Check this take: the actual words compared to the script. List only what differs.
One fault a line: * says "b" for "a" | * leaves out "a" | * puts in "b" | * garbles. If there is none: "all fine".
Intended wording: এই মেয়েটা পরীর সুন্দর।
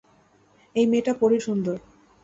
all fine